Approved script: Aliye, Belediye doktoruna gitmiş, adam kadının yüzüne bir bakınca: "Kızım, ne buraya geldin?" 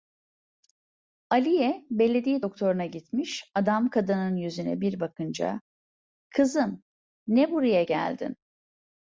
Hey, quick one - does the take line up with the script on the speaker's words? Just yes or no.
yes